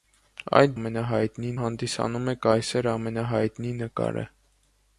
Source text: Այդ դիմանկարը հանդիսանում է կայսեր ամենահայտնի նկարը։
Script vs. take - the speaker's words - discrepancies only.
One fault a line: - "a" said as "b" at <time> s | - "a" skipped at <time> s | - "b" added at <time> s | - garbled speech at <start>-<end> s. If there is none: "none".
- "դիմանկարը" said as "ամենահայտնի" at 0.8 s